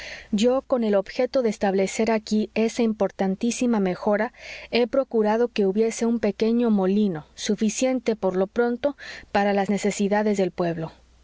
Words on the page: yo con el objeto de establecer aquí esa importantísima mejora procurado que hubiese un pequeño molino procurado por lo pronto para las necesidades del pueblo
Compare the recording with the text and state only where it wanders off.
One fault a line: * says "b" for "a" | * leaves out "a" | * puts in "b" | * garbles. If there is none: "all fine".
* puts in "he"
* says "suficiente" for "procurado"